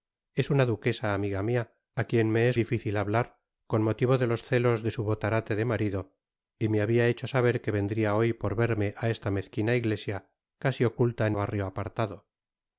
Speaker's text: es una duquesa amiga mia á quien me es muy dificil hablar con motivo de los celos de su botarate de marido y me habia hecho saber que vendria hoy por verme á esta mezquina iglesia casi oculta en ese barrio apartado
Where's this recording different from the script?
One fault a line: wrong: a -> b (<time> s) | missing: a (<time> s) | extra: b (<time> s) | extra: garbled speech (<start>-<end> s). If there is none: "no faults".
missing: muy (2.6 s)
missing: ese (11.3 s)